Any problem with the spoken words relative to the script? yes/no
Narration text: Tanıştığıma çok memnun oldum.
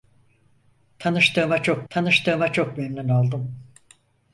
yes